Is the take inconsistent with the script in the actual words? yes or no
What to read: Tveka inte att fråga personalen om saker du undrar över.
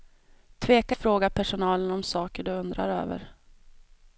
yes